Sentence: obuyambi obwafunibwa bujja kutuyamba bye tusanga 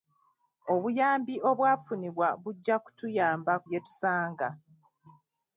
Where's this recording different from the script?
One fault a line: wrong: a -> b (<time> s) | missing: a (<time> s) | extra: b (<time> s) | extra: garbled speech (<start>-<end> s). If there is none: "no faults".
no faults